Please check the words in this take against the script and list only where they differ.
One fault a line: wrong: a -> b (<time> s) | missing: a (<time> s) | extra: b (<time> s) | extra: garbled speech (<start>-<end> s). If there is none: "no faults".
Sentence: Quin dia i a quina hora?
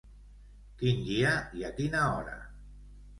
no faults